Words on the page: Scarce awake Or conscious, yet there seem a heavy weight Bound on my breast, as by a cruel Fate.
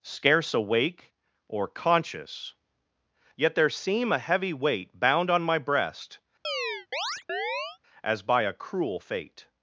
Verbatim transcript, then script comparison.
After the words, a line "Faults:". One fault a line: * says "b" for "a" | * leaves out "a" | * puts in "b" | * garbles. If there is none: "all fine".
Scarce awake Or conscious, yet there seem a heavy weight Bound on my breast, as by a cruel Fate.
Faults:
all fine